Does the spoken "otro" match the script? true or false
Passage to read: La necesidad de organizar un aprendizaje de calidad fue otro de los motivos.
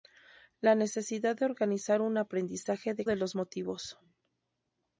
false